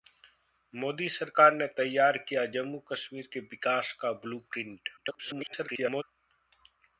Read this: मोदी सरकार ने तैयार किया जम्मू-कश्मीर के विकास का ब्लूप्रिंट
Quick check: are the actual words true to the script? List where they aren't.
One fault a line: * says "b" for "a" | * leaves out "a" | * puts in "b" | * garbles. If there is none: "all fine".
* garbles